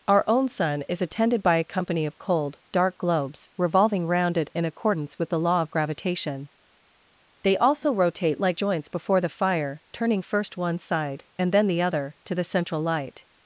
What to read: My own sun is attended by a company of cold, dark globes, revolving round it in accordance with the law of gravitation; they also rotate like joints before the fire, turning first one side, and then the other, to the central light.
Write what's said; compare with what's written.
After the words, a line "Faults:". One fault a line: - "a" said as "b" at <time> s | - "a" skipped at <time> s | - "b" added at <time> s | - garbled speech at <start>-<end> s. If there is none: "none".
Our own sun is attended by a company of cold, dark globes, revolving round it in accordance with the law of gravitation; they also rotate like joints before the fire, turning first one side, and then the other, to the central light.
Faults:
- "My" said as "Our" at 0.1 s